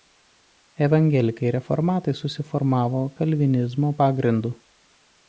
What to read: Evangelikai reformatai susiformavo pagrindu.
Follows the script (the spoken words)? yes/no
no